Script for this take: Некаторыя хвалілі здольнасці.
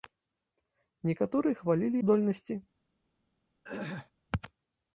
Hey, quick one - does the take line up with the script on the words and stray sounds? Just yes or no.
no